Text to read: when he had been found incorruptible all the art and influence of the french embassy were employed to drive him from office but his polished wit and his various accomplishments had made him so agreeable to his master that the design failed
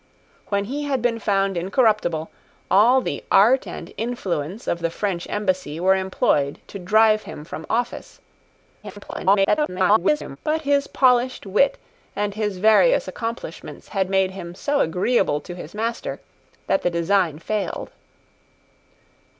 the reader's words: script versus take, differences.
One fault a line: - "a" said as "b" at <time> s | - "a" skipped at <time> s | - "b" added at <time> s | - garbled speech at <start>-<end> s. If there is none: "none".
- garbled speech at 8.8-10.4 s